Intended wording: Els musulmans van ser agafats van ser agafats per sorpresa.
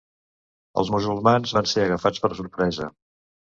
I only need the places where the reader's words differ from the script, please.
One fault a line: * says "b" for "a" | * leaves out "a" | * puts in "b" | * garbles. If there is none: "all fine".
* leaves out "van ser agafats"